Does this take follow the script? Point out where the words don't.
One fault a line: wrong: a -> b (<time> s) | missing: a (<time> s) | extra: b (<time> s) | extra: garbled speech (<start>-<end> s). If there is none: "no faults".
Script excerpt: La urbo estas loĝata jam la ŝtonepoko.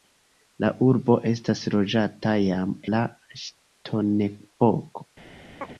no faults